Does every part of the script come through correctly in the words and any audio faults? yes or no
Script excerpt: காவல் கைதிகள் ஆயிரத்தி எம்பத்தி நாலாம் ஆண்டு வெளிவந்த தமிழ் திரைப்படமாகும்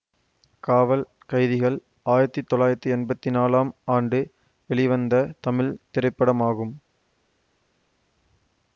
no